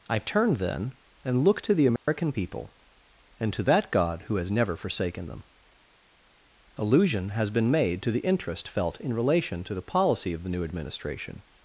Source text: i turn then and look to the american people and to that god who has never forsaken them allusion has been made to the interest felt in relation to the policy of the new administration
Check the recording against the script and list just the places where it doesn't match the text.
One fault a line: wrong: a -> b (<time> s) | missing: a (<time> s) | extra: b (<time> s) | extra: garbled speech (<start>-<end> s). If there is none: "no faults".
no faults